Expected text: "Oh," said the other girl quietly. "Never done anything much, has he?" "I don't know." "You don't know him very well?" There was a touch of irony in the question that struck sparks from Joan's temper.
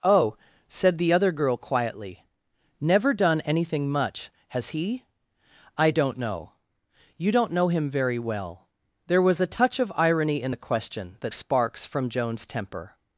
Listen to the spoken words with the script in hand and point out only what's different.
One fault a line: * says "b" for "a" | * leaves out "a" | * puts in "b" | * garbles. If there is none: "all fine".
* leaves out "struck"